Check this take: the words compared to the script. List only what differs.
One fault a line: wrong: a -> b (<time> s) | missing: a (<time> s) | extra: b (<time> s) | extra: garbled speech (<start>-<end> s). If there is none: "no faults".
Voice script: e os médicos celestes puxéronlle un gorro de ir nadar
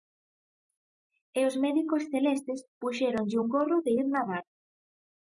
no faults